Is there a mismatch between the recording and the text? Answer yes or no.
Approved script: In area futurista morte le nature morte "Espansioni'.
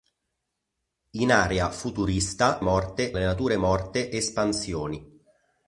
no